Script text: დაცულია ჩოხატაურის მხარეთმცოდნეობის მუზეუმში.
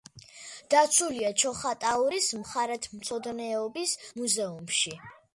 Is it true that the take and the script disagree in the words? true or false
false